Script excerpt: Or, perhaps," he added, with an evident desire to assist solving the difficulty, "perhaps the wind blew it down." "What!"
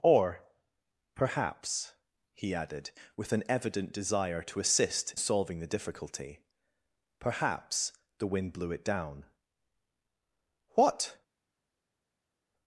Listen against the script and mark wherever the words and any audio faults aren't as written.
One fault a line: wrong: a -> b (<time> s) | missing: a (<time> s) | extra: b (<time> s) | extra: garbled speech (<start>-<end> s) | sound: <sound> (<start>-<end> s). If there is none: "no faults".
no faults